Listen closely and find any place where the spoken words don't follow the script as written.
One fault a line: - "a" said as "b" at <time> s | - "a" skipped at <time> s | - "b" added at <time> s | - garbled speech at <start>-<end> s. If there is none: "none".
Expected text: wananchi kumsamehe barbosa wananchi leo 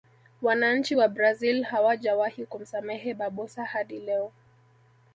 - "wa brazil hawajawahi" added at 0.9 s
- "wananchi" said as "hadi" at 3.6 s